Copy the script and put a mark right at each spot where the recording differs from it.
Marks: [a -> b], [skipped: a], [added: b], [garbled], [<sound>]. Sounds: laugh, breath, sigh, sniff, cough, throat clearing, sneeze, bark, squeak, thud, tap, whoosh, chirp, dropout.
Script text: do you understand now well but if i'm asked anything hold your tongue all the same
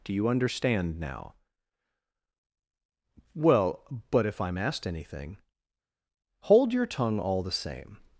do you understand now well but if i'm asked anything hold your tongue all the same